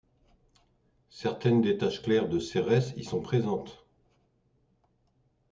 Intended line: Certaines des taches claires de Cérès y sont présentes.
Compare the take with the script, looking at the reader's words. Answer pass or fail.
pass